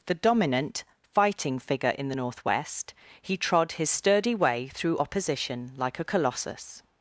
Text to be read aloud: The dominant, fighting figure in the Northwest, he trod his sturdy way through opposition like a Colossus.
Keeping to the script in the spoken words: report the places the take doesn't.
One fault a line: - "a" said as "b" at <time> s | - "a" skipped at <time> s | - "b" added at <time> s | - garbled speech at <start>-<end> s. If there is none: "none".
none